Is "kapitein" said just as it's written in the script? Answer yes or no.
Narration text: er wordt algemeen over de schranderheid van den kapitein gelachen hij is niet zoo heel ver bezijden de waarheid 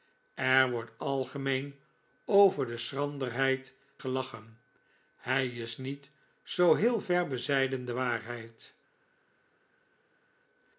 no